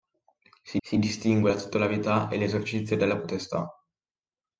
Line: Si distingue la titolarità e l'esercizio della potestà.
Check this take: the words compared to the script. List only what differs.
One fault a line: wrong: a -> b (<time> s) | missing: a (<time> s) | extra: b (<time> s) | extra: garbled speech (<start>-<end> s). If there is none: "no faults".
extra: si (0.8 s)